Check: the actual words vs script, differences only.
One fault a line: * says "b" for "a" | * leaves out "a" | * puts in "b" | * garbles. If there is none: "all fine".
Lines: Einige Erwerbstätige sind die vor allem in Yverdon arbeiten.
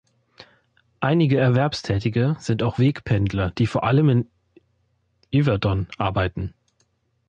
* puts in "auch Wegpendler"